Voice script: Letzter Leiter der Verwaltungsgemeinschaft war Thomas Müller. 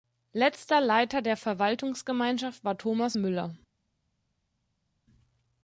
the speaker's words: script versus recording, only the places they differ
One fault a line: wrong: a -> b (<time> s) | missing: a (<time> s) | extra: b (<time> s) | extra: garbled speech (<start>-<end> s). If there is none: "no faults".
no faults